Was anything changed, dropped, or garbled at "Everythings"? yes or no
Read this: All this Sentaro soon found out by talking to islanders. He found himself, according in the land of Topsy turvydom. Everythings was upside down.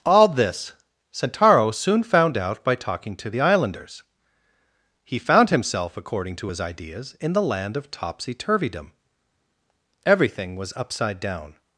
yes